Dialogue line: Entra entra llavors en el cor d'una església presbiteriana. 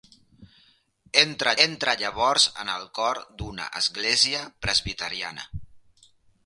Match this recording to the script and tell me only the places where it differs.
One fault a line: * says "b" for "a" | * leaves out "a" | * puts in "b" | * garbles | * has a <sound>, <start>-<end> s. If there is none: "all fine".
all fine